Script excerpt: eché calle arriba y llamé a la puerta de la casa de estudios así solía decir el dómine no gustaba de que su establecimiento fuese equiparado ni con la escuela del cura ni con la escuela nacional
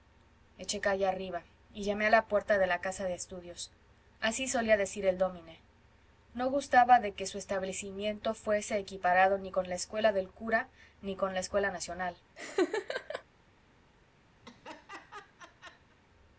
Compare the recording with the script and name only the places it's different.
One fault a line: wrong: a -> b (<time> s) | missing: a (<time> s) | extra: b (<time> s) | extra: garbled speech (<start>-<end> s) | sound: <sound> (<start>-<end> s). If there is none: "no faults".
sound: laugh (12.4-13.2 s)
sound: laugh (14.4-16.0 s)